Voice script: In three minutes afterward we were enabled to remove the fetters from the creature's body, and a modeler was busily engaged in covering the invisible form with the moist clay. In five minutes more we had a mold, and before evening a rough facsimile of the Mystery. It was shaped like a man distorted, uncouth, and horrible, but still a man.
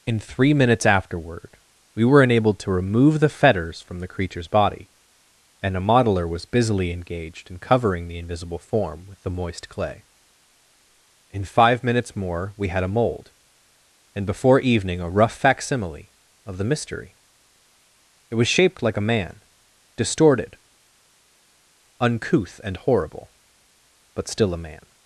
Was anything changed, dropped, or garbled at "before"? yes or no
no